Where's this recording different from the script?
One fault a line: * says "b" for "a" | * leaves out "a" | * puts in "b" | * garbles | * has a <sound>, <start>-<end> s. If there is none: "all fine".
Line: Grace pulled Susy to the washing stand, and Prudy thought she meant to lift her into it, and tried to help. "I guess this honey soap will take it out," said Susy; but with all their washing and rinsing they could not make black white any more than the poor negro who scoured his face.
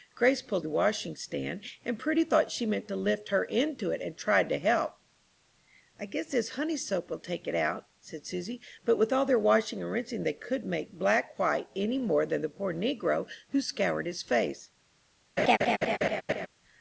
* leaves out "Susy to"
* leaves out "not"
* has a laugh, 15.4-16.5 s